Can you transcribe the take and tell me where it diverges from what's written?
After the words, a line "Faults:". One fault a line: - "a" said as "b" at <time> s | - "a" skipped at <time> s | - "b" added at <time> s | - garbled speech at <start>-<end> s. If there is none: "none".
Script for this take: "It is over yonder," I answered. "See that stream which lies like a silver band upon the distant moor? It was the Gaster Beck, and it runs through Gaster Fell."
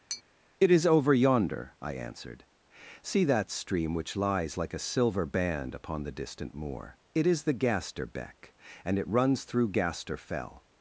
"It is over yonder," I answered. "See that stream which lies like a silver band upon the distant moor? It is the Gaster Beck, and it runs through Gaster Fell."
Faults:
- "was" said as "is" at 7.3 s